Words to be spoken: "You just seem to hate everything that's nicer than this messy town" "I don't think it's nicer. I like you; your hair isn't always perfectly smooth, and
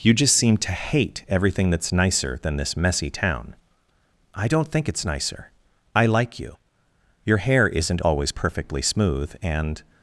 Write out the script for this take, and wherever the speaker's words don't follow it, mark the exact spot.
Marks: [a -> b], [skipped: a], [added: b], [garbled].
"You just seem to hate everything that's nicer than this messy town" "I don't think it's nicer. I like you; your hair isn't always perfectly smooth, and